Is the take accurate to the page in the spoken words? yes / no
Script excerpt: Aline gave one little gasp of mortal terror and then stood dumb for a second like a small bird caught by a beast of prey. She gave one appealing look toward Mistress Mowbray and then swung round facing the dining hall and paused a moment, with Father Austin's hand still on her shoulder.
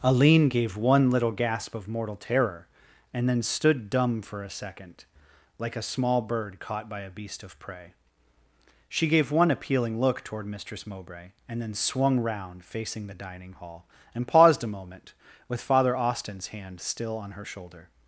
yes